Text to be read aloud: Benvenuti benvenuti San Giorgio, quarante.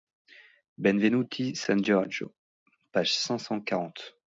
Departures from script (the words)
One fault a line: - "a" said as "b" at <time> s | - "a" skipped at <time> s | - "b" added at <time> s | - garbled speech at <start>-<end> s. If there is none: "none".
- "benvenuti" skipped at 1.6 s
- "page cinq cent" added at 2.9 s